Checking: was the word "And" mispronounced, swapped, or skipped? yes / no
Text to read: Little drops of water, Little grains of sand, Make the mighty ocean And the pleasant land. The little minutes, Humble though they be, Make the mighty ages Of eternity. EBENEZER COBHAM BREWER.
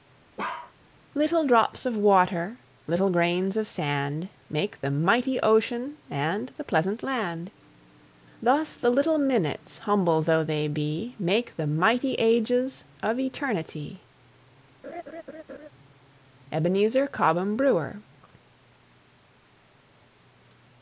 no